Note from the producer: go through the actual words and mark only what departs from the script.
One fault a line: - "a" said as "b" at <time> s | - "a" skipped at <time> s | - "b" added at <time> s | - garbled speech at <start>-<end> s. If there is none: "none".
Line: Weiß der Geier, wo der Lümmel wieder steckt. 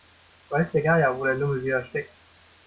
none